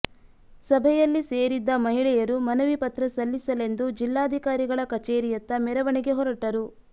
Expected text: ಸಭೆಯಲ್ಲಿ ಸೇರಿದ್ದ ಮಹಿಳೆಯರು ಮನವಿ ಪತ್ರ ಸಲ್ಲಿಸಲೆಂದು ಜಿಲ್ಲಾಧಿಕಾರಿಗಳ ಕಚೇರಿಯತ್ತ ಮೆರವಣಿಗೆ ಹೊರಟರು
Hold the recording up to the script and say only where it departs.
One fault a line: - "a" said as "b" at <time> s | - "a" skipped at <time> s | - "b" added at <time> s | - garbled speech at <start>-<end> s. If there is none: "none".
none